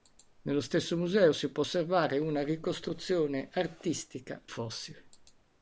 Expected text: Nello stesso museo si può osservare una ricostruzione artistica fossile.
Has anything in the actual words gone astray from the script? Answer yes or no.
no